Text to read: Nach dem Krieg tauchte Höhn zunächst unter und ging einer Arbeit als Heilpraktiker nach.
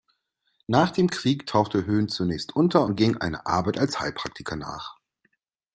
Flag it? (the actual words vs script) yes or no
no